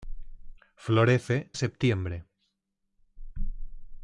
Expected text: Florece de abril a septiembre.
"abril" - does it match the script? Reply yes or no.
no